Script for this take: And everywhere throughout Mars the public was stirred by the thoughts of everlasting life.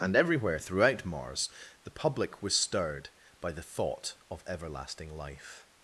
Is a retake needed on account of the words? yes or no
yes